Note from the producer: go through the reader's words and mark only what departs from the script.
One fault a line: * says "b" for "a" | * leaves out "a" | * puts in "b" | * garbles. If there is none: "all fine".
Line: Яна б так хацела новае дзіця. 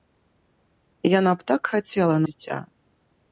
* leaves out "новае"